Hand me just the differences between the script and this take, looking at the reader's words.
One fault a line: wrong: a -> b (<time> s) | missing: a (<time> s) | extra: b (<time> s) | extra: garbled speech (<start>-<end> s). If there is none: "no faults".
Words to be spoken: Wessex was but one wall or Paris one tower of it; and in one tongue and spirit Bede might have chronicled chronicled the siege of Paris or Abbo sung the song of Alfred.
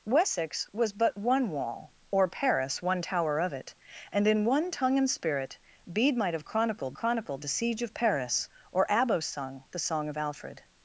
no faults